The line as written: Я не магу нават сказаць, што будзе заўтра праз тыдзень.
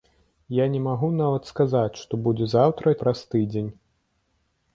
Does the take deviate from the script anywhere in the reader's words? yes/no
no